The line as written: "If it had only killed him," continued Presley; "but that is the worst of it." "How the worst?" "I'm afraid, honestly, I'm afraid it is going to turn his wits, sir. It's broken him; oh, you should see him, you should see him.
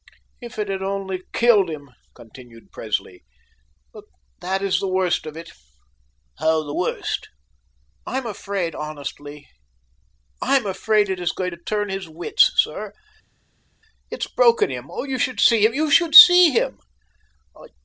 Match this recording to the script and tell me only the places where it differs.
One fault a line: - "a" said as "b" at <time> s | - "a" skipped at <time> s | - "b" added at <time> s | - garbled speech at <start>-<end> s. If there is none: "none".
none